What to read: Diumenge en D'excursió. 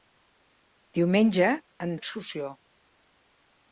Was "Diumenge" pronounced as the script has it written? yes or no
yes